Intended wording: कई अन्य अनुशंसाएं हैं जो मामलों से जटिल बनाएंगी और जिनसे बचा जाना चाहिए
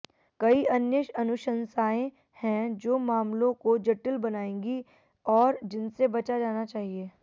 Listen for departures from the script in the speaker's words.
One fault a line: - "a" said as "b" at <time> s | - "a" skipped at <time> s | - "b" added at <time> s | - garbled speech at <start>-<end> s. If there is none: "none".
- "से" said as "को" at 3.5 s